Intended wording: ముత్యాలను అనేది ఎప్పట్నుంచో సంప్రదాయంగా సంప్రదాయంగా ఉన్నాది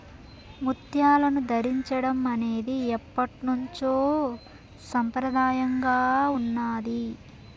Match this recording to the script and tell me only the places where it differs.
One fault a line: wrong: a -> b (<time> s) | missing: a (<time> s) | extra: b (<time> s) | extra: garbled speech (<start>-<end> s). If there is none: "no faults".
extra: ధరించడం (1.5 s)
missing: సంప్రదాయంగా (6.0 s)